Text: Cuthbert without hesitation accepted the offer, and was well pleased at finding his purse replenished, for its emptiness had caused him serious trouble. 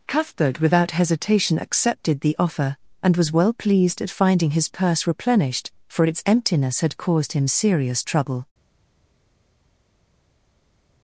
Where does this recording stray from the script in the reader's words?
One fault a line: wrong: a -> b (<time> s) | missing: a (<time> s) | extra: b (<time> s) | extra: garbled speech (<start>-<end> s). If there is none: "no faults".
no faults